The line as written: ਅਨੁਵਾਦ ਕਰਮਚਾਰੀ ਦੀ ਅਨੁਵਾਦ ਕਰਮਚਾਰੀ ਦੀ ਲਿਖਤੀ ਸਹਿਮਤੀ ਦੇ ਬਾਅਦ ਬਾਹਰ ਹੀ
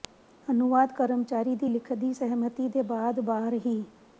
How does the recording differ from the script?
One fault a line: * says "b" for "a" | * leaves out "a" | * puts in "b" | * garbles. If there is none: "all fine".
* leaves out "ਅਨੁਵਾਦ ਕਰਮਚਾਰੀ ਦੀ"